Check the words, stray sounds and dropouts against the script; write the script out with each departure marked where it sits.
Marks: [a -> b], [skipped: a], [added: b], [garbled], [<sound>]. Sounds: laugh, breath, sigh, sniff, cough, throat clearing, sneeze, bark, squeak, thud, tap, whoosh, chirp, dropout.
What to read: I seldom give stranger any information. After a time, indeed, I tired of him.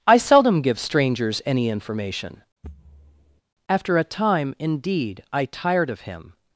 I seldom give [stranger -> strangers] any information. [thud] After a time, indeed, I tired of him.